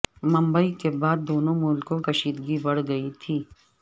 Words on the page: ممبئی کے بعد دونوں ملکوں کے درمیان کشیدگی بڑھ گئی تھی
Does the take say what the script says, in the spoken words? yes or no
no